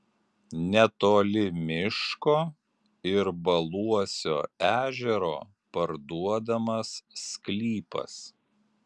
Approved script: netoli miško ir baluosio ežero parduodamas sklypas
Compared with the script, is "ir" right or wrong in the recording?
right